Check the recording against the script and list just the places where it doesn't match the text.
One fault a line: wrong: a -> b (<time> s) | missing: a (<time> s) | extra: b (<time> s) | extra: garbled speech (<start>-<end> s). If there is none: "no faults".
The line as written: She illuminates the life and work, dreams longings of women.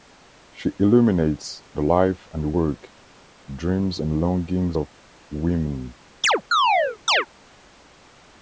extra: and (4.0 s)